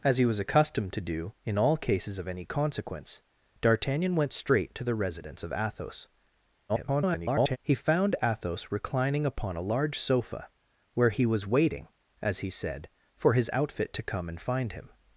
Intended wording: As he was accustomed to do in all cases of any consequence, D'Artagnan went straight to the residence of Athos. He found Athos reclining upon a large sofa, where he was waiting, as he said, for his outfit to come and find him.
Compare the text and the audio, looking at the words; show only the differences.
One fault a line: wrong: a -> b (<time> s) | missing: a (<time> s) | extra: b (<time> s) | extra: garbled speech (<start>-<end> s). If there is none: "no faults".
extra: garbled speech (6.7-7.6 s)